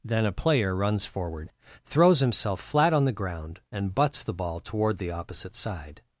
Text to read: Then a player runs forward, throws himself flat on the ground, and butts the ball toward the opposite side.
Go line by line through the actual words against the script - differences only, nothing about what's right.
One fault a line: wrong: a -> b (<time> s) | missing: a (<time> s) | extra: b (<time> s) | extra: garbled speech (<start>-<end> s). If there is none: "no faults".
no faults